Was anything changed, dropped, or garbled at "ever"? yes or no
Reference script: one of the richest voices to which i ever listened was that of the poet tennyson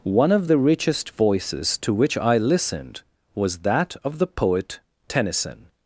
yes